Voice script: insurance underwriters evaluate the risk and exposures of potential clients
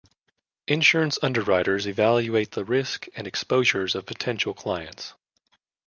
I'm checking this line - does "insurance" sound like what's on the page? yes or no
yes